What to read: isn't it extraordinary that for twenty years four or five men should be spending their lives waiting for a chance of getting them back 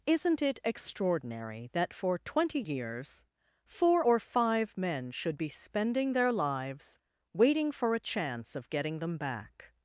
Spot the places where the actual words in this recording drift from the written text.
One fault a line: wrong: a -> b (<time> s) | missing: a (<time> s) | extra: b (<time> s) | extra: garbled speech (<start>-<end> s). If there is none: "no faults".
no faults